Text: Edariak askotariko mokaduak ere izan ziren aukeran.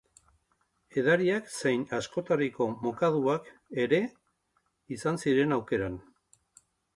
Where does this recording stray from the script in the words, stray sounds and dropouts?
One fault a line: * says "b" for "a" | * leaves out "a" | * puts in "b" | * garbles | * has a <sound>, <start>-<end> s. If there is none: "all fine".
* puts in "zein"